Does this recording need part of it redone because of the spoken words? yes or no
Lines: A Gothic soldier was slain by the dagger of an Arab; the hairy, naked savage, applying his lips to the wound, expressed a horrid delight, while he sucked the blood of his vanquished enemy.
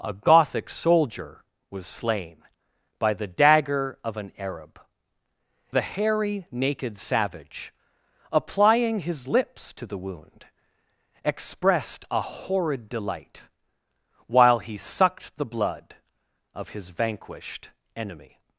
no